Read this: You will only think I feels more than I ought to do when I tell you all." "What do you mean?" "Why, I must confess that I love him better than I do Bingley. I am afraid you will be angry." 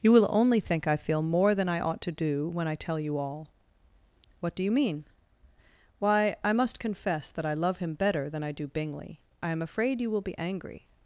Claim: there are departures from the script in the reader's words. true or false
true